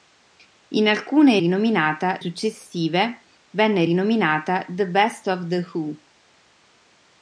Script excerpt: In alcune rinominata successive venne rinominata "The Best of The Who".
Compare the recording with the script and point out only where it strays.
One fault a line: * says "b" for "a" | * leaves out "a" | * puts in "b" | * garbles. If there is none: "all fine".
all fine